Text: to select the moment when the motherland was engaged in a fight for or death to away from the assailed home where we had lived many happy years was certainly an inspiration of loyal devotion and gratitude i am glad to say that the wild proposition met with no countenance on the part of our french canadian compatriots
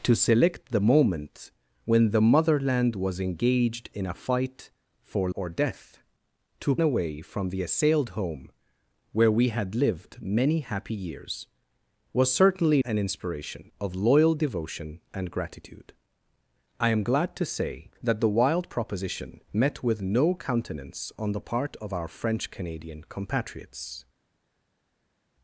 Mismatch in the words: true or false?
false